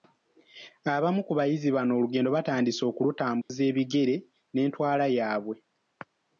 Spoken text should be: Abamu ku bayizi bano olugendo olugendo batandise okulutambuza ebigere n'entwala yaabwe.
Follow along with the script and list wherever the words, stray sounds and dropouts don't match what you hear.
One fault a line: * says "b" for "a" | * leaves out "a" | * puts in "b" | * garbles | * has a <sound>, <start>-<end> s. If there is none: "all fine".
* leaves out "olugendo"
* has a dropout, 3.4-3.5 s